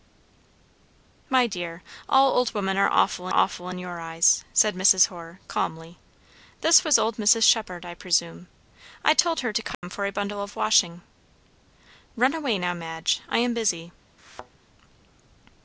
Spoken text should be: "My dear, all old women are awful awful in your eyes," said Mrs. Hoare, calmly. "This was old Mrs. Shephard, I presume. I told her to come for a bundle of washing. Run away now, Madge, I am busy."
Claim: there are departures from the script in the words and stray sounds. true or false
true